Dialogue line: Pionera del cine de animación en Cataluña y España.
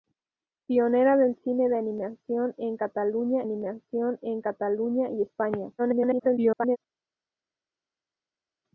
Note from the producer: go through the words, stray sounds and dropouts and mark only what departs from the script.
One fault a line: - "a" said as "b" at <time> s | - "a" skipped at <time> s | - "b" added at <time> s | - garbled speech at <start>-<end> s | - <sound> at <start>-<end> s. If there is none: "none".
- "animación en Cataluña" added at 3.4 s
- garbled speech at 5.8-6.8 s